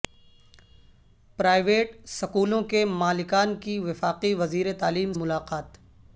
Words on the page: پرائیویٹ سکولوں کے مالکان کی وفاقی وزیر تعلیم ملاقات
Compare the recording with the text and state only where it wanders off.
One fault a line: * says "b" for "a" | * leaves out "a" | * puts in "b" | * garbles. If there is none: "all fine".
all fine